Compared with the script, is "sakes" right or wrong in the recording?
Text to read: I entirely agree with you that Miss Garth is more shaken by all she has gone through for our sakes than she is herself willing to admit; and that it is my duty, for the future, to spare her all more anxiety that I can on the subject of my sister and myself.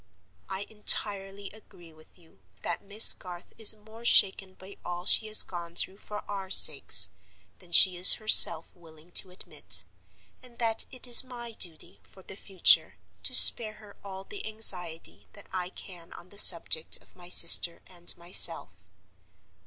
right